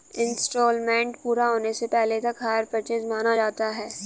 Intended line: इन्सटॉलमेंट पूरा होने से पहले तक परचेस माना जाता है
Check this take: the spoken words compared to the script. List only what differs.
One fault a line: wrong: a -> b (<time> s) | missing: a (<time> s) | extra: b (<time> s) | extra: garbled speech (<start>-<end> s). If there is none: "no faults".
extra: हायर (2.4 s)